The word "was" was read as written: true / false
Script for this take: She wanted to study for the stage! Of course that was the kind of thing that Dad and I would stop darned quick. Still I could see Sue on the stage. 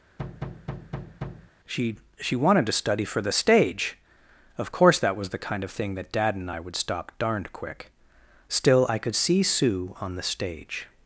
true